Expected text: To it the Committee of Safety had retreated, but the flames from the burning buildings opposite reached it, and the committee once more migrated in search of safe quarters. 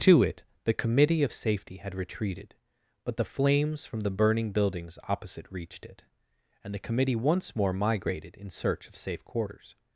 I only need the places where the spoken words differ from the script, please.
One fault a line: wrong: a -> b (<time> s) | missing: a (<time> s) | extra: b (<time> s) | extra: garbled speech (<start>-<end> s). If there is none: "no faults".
no faults